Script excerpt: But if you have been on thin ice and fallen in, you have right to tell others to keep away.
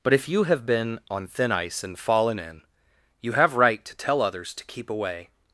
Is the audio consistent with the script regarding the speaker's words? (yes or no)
yes